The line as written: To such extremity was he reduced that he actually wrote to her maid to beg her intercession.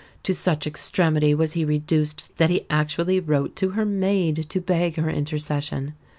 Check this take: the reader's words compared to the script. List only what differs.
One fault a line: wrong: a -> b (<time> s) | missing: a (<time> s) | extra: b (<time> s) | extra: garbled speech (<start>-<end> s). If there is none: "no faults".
no faults